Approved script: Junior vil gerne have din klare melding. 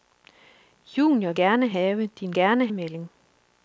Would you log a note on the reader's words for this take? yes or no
yes